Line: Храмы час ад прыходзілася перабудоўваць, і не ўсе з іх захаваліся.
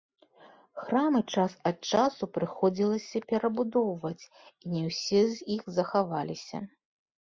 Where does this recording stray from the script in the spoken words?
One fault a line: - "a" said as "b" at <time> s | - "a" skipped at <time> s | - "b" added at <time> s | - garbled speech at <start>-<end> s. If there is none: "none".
- "часу" added at 1.9 s